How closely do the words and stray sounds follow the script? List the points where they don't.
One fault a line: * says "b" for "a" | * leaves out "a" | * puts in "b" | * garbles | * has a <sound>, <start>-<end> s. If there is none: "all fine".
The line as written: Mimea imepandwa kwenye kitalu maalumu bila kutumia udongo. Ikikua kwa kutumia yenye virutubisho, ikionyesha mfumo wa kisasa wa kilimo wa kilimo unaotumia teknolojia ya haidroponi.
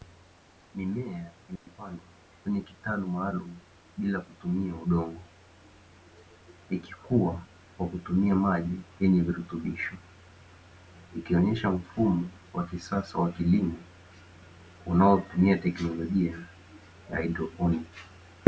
* has a dropout, 1.6-1.7 s
* puts in "maji"
* leaves out "wa kilimo"